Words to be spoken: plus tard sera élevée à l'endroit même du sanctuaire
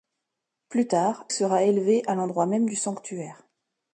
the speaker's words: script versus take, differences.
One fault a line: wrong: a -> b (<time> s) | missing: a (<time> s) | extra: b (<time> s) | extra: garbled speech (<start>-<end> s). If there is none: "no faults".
no faults